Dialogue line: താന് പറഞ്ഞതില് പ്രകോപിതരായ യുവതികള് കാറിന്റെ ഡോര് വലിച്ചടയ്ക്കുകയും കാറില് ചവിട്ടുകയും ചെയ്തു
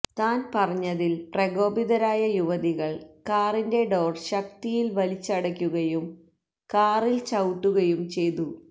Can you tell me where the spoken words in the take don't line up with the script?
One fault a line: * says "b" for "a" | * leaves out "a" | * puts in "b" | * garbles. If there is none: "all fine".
* puts in "ശക്തിയില്"